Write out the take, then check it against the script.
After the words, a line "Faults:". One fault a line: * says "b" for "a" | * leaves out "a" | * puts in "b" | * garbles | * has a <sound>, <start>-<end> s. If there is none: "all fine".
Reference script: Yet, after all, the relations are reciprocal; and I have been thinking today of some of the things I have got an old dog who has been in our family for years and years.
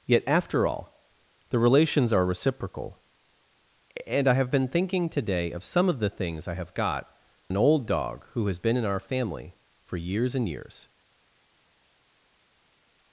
Yet, after all, the relations are reciprocal; and I have been thinking today of some of the things I have got an old dog who has been in our family for years and years.
Faults:
all fine